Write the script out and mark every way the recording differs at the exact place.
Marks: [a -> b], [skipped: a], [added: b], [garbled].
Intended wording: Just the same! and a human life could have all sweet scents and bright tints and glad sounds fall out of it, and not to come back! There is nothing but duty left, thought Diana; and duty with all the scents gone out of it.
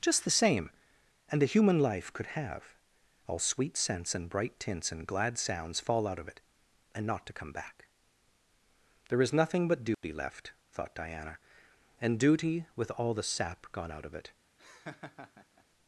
Just the same! and a human life could have all sweet scents and bright tints and glad sounds fall out of it, and not to come back! There is nothing but duty left, thought Diana; and duty with all the [scents -> sap] gone out of it.